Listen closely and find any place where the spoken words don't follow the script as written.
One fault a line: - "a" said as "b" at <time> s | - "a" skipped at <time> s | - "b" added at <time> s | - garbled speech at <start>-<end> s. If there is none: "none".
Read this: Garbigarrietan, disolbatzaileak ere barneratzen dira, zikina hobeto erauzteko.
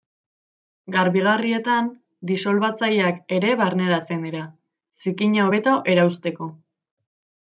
none